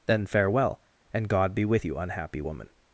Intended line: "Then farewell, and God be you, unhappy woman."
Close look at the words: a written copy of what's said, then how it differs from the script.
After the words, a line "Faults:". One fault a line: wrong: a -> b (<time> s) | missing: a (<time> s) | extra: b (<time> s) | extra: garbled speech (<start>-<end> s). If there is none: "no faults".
"Then farewell, and God be with you, unhappy woman."
Faults:
extra: with (1.7 s)